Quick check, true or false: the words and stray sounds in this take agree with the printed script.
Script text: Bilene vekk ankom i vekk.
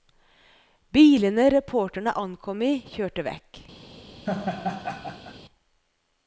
false